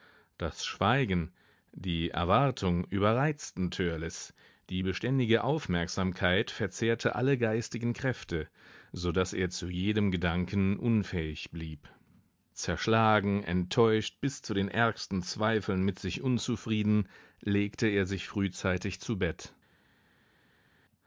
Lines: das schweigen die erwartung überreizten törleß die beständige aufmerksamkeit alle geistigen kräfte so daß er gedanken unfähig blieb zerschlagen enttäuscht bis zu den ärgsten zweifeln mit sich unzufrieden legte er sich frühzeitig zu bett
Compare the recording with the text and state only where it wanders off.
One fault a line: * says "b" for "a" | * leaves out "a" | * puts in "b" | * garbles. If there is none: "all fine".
* puts in "verzehrte"
* puts in "zu jedem"